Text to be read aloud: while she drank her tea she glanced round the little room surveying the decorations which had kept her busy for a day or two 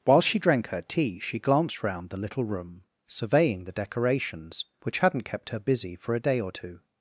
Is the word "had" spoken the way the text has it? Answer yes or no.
no